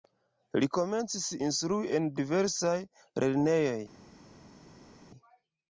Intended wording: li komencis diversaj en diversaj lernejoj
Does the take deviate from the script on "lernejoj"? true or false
false